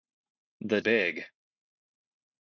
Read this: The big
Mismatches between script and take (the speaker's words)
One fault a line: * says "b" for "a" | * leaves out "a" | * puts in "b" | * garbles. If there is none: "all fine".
all fine